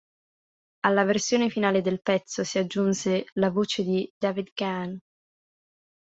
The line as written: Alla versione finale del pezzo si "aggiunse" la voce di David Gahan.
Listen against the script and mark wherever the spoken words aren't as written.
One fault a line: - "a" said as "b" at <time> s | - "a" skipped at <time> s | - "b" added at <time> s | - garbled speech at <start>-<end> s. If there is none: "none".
none